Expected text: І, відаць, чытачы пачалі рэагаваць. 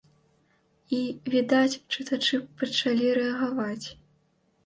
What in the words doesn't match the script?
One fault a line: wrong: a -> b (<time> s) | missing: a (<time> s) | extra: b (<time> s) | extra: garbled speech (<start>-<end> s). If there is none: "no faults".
no faults